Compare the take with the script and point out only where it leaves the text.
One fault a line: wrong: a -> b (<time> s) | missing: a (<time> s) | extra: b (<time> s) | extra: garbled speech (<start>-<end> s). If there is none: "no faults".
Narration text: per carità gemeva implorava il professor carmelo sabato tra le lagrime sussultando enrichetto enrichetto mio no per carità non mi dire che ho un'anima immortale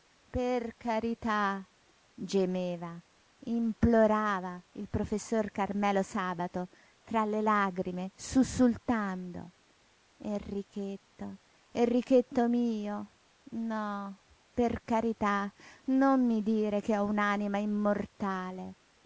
no faults